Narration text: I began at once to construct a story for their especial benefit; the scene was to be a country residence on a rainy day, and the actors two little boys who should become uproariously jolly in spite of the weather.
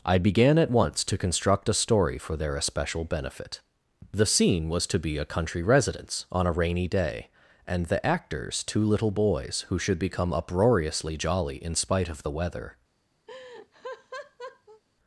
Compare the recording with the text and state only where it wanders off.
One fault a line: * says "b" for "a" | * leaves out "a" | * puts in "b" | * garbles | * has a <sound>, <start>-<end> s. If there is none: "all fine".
* has a laugh, 13.3-14.8 s